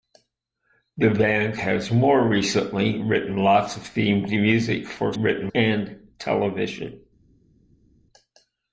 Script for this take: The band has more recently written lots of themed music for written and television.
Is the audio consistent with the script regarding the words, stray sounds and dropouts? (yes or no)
yes